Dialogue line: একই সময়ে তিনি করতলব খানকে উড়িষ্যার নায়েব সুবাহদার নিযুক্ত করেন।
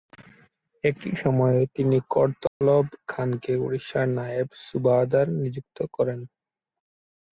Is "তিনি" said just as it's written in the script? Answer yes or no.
yes